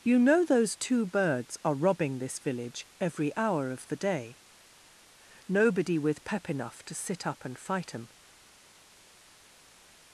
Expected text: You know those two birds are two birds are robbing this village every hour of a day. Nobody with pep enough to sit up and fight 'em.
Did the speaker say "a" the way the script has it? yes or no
no